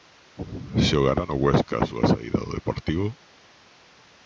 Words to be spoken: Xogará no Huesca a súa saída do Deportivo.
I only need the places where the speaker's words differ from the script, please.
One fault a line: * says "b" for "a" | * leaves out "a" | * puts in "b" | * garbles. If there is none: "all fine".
all fine